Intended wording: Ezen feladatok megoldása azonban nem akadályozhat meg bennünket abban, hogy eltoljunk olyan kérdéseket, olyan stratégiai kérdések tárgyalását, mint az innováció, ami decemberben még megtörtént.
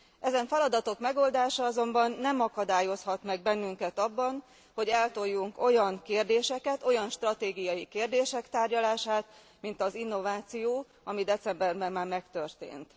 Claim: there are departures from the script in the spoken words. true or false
true